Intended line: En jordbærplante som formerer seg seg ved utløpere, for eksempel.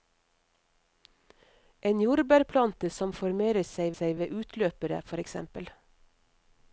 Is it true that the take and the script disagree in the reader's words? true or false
false